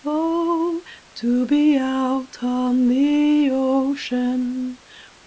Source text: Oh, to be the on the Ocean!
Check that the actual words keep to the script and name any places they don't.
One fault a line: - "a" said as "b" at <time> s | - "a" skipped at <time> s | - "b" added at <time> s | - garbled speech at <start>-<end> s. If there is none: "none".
- "the" said as "out" at 1.8 s